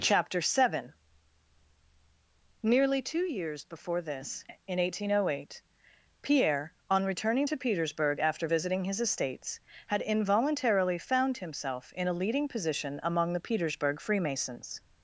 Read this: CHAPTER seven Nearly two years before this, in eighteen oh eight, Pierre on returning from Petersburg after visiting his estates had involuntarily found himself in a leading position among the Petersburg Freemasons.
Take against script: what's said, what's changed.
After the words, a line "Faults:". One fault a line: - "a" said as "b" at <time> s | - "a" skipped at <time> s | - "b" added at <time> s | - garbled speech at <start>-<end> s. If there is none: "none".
CHAPTER seven Nearly two years before this, in eighteen oh eight, Pierre on returning to Petersburg after visiting his estates had involuntarily found himself in a leading position among the Petersburg Freemasons.
Faults:
- "from" said as "to" at 7.4 s